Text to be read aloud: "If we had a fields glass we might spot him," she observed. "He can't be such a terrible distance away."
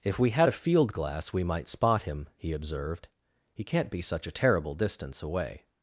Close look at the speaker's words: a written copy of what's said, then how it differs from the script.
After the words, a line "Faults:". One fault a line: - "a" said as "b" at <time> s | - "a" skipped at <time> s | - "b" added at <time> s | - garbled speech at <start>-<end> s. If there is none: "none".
"If we had a field glass we might spot him," he observed. "He can't be such a terrible distance away."
Faults:
- "fields" said as "field" at 0.5 s
- "she" said as "he" at 2.4 s